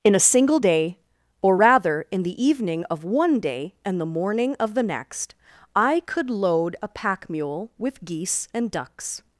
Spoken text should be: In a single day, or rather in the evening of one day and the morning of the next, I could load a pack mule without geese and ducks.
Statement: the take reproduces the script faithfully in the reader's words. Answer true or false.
false